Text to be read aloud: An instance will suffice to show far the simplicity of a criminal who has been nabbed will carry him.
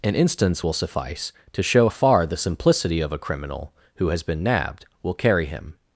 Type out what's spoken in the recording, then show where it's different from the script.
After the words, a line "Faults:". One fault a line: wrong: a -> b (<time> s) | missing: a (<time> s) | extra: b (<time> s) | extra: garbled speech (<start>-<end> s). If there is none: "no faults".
An instance will suffice to show far the simplicity of a criminal who has been nabbed will carry him.
Faults:
no faults